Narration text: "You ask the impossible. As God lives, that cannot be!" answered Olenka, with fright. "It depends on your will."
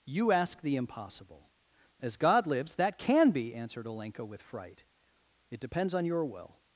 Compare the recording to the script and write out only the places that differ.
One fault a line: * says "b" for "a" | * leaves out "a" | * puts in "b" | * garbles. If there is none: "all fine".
* says "can" for "cannot"